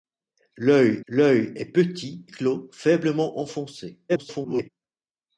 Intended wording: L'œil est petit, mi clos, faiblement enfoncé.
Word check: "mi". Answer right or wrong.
wrong